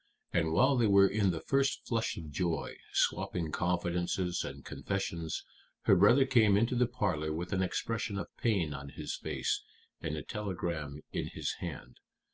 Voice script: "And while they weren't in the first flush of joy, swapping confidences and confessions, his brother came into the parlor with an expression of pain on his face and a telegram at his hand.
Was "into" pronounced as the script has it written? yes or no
yes